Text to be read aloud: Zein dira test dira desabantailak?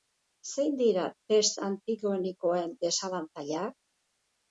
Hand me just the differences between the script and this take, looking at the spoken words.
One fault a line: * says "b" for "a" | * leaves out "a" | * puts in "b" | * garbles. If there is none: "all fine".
* says "antigenikoen" for "dira"